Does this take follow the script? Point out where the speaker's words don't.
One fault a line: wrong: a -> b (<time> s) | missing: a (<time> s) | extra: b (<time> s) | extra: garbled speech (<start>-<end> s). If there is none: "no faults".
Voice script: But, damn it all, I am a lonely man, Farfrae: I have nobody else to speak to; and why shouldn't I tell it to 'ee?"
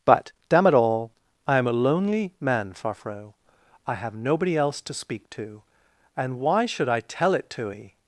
wrong: shouldn't -> should (6.7 s)